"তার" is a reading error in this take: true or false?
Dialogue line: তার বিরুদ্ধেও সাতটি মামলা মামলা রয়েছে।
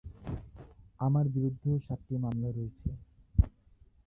true